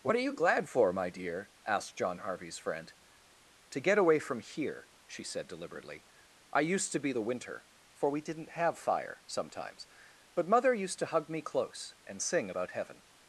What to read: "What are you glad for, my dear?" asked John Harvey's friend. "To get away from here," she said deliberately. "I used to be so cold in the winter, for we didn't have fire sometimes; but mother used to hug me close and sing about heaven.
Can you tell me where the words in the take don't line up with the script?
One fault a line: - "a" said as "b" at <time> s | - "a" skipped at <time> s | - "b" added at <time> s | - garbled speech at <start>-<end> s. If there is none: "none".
- "so cold in" skipped at 7.1 s